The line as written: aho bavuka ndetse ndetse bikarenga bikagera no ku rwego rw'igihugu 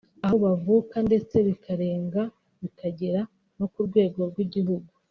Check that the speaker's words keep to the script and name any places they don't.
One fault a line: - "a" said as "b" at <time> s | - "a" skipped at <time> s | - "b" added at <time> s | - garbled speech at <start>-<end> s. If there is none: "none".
- "ndetse" skipped at 1.4 s